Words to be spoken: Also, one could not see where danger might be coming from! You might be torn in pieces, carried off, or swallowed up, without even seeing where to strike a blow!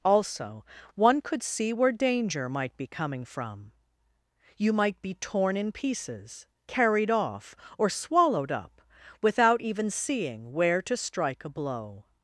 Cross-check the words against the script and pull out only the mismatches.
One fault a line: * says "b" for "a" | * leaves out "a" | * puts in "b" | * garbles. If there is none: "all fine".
* leaves out "not"